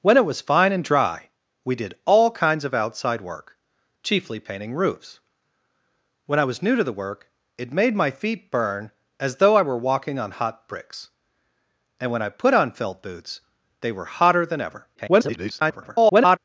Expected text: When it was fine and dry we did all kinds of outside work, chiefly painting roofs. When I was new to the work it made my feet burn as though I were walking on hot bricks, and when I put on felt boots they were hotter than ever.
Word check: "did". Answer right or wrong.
right